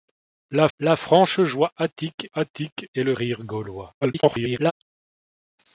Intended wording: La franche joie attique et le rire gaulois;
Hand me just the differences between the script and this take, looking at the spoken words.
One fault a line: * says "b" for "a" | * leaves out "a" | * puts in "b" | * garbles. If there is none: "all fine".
* puts in "la"
* puts in "attique"
* garbles